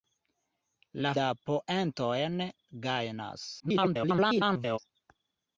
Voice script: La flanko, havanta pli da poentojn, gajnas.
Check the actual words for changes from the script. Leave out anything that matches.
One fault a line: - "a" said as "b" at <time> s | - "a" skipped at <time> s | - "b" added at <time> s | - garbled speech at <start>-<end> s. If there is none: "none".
- "flanko havanta pli" skipped at 1.1 s
- garbled speech at 3.6-4.8 s